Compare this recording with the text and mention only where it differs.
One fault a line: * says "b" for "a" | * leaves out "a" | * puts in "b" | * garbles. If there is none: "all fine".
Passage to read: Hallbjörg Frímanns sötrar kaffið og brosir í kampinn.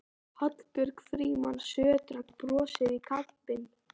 * leaves out "kaffið"